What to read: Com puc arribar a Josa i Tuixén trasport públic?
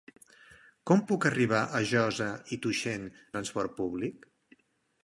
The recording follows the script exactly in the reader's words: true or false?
true